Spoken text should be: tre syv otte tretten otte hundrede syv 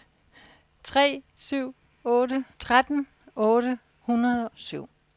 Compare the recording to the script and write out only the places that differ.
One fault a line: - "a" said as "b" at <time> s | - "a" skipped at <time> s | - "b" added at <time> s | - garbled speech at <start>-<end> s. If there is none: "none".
none